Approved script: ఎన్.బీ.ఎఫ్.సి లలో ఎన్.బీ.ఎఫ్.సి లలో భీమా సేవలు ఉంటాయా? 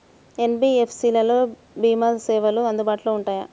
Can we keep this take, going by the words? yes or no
no